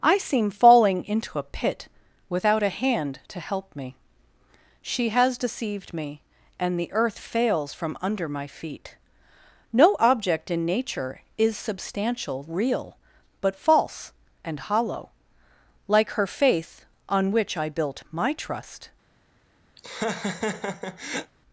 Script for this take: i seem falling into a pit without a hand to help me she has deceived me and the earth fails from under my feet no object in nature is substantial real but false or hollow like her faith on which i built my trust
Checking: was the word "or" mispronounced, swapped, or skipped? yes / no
yes